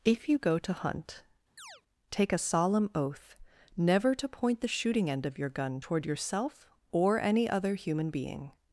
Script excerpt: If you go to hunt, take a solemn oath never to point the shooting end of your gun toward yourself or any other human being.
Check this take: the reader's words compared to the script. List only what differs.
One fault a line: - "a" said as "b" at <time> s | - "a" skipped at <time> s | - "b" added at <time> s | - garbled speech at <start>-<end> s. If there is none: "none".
none